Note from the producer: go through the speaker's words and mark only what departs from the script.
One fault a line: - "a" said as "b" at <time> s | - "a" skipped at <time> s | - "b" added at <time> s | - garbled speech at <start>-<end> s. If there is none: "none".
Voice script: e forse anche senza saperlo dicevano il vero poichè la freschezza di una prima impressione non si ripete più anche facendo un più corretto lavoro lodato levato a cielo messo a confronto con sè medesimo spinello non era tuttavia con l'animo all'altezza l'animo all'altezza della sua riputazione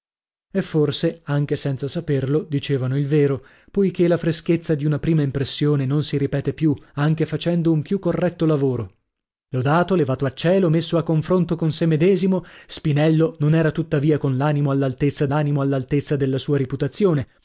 none